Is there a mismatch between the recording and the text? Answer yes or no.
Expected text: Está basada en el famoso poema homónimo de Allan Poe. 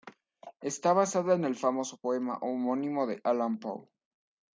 no